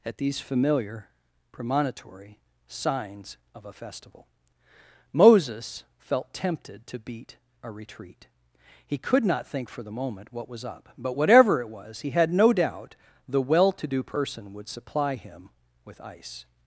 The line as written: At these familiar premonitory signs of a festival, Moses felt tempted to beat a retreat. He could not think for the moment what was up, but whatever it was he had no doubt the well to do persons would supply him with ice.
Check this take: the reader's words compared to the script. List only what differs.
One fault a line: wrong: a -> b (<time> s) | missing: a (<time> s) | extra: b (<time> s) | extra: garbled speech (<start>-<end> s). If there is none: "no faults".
wrong: persons -> person (14.0 s)